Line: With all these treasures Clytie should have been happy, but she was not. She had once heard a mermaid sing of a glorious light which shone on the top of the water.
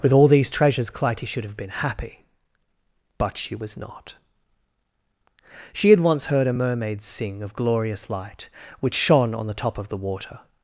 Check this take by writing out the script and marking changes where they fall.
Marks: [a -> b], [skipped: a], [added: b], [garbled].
With all these treasures Clytie should have been happy, but she was not. She had once heard a mermaid sing of [skipped: a] glorious light which shone on the top of the water.